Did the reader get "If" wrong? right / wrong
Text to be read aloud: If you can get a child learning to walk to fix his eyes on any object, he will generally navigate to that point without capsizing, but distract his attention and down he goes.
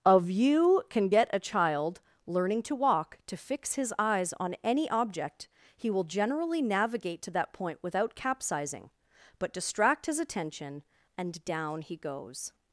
wrong